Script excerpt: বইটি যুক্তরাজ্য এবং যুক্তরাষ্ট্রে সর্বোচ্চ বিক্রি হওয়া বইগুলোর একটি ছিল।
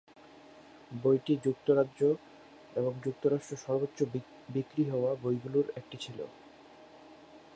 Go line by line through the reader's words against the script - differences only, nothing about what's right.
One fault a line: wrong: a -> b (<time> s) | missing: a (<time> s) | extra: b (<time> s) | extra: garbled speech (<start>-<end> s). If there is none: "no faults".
no faults